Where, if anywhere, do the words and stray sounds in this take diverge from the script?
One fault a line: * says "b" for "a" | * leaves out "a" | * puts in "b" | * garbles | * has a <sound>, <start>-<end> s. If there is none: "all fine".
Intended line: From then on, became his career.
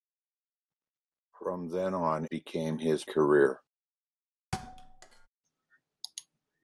* has a thud, 4.5-5.3 s